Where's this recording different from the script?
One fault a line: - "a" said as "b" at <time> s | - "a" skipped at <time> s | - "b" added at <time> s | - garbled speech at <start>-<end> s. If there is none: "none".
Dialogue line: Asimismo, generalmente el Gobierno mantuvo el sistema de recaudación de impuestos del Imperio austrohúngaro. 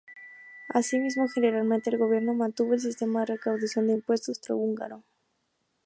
- "del Imperio" skipped at 4.3 s